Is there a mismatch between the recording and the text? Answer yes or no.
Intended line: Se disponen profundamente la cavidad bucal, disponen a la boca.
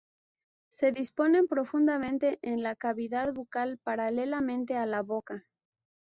yes